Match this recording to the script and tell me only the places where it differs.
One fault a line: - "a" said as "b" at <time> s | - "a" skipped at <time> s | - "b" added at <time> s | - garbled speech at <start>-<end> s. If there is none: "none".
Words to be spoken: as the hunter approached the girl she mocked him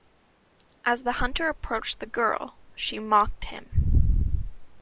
none